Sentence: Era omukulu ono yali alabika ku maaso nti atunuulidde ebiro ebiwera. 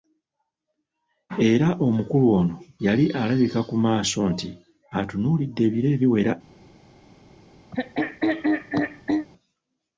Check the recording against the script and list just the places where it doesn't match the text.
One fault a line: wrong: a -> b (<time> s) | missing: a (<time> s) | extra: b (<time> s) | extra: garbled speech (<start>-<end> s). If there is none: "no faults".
no faults